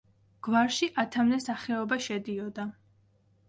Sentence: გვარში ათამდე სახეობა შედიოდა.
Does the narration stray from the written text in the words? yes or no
no